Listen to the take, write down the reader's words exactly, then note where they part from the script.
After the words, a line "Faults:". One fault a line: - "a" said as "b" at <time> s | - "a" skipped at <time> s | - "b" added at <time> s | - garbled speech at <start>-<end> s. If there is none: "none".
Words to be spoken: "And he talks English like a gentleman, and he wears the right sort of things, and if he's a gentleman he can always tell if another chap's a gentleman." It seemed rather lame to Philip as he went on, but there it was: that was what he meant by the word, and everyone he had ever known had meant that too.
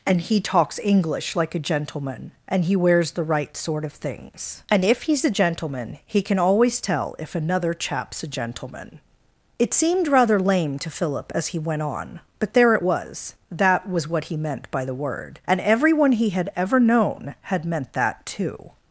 "And he talks English like a gentleman, and he wears the right sort of things, and if he's a gentleman he can always tell if another chap's a gentleman." It seemed rather lame to Philip as he went on, but there it was: that was what he meant by the word, and everyone he had ever known had meant that too.
Faults:
none